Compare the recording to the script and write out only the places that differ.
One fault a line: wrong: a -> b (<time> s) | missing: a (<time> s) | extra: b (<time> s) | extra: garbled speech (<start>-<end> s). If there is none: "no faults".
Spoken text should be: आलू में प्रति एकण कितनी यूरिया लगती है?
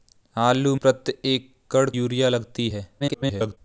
missing: में (0.8 s)
missing: कितनी (1.9 s)
extra: garbled speech (3.0-3.6 s)